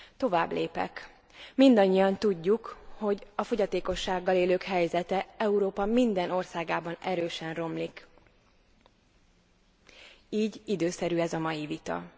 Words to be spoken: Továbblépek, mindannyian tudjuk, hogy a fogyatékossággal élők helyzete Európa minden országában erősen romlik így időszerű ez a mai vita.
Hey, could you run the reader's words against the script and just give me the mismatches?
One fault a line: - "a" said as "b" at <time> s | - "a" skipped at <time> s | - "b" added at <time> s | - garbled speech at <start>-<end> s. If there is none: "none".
none